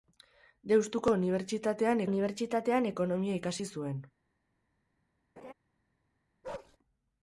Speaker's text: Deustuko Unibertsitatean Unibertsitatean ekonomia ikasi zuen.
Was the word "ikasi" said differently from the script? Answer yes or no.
no